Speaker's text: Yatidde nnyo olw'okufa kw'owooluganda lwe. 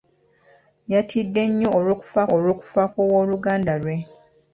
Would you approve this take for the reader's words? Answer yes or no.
no